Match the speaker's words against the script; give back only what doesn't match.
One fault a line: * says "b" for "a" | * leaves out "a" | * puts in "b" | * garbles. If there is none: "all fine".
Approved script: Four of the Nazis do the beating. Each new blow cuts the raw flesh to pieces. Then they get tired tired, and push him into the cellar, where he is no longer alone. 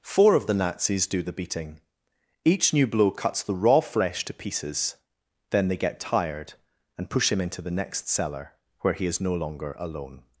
* leaves out "tired"
* puts in "next"